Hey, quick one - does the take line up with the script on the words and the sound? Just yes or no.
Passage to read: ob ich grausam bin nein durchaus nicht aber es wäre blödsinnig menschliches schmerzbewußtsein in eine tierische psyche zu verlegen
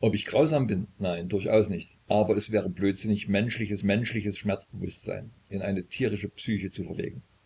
no